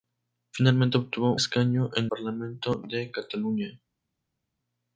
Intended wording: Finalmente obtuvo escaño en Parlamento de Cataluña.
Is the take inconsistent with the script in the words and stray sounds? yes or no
no